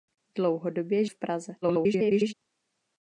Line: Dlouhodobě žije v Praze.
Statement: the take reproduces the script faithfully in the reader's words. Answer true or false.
false